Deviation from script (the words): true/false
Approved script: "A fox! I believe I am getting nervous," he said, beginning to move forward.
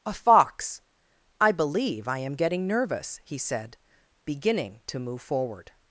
false